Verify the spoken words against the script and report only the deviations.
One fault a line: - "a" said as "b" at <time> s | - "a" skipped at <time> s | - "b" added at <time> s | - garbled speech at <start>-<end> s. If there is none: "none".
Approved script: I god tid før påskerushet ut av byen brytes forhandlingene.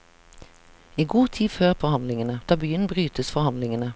- "påskerushet" said as "forhandlingene" at 1.8 s